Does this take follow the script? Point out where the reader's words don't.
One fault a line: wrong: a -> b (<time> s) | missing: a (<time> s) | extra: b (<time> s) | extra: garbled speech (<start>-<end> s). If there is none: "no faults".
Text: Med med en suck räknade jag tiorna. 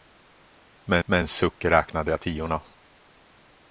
no faults